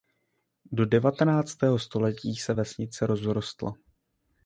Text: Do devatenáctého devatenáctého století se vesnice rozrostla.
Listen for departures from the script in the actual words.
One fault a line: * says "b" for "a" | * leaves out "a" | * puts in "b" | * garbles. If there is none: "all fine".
* leaves out "devatenáctého"